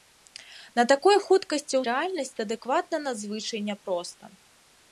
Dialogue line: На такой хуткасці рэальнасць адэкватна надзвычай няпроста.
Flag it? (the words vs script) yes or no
no